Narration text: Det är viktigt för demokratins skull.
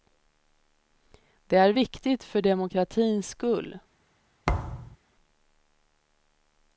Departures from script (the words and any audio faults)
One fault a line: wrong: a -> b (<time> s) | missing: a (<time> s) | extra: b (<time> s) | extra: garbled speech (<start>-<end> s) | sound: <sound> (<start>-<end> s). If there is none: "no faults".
sound: thud (4.5-5.0 s)